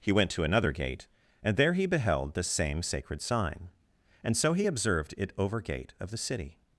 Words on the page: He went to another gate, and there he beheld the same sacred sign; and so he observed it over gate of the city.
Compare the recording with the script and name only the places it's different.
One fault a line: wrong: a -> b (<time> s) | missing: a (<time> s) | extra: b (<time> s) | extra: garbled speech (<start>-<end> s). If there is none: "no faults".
no faults